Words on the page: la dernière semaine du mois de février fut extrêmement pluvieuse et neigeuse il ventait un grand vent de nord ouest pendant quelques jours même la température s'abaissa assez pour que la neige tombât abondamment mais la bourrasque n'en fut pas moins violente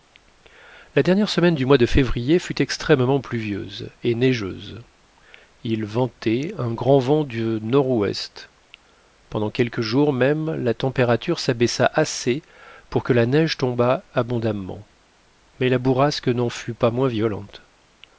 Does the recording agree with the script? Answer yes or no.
yes